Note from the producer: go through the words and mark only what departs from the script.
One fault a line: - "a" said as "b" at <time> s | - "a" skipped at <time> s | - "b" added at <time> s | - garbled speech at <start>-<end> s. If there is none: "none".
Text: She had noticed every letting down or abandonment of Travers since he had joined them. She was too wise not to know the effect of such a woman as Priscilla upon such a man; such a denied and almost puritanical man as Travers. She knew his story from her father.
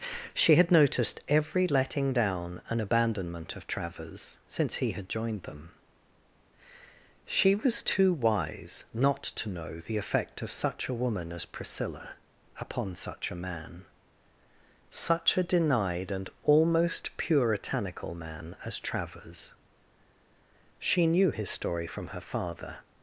- "or" said as "and" at 2.7 s